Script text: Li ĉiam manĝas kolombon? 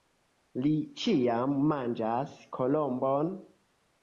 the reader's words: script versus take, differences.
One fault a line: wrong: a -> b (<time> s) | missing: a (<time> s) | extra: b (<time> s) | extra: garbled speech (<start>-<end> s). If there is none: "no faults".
no faults